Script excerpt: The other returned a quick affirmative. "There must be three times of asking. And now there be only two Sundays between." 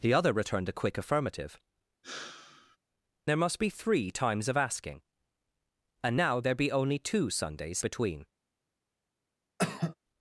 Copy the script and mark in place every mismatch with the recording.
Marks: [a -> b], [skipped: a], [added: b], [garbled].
The other returned a quick affirmative. "There must be three times of asking. And now there be only two Sundays between."